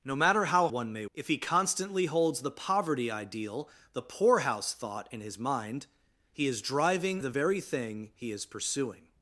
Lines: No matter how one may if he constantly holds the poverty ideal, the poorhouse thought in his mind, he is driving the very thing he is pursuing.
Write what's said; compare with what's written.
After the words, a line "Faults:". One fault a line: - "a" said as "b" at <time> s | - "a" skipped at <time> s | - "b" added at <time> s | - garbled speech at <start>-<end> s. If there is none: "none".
No matter how one may if he constantly holds the poverty ideal, the poorhouse thought in his mind, he is driving the very thing he is pursuing.
Faults:
none